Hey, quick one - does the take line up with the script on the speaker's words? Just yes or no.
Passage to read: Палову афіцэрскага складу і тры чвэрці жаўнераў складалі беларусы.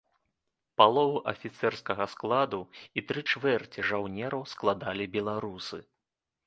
yes